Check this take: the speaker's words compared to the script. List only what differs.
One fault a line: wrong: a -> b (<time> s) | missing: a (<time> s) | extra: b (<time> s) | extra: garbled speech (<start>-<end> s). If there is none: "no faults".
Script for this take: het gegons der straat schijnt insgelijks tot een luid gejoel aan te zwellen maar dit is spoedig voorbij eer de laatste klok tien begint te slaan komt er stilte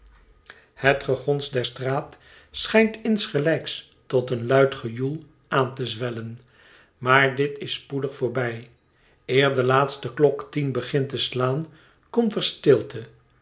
no faults